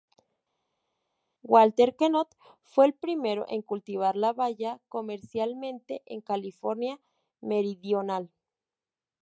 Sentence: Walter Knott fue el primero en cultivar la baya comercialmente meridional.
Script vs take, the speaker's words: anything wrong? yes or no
yes